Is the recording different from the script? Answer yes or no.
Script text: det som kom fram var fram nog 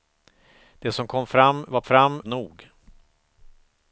no